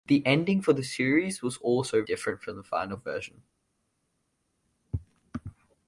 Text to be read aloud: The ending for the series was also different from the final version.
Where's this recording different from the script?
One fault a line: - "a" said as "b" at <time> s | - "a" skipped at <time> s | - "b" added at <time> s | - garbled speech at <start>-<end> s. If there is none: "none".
none